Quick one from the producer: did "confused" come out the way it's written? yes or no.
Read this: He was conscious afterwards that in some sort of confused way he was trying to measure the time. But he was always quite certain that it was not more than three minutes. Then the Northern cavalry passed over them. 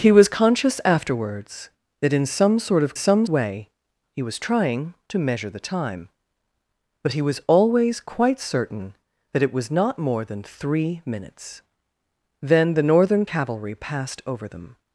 no